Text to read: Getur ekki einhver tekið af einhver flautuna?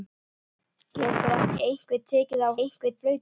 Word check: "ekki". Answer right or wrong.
right